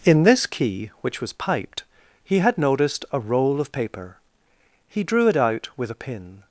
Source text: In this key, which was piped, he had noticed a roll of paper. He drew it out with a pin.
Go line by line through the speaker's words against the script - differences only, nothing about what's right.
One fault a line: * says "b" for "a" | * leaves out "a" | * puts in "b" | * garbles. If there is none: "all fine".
all fine